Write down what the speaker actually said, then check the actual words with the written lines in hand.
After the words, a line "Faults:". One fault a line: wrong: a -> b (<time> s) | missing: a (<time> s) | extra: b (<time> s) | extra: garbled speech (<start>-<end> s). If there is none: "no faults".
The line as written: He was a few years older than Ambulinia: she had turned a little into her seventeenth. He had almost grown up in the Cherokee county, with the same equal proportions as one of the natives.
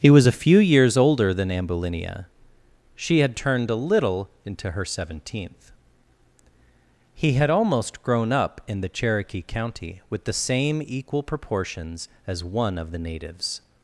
He was a few years older than Ambulinia: she had turned a little into her seventeenth. He had almost grown up in the Cherokee county, with the same equal proportions as one of the natives.
Faults:
no faults